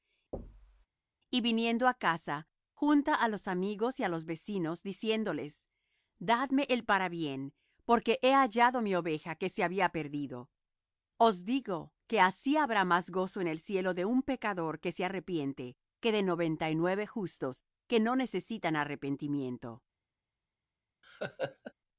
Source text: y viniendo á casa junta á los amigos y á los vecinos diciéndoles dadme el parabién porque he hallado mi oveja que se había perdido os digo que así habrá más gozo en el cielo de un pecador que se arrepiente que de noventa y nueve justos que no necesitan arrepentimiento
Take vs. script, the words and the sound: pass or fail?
fail